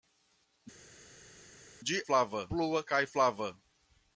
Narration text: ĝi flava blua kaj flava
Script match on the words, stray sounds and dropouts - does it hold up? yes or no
yes